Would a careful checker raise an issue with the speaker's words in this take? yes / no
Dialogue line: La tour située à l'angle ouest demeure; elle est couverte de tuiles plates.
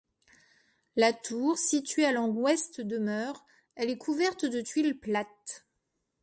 no